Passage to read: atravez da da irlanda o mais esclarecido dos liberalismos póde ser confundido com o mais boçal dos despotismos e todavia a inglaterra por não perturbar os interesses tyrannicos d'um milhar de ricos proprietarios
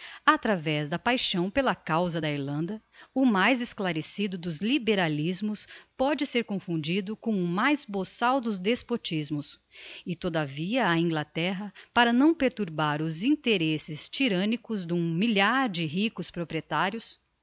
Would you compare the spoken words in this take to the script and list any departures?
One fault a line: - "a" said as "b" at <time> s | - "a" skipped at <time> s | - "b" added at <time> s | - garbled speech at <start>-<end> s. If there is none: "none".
- "paixão pela causa" added at 1.0 s
- "por" said as "para" at 11.9 s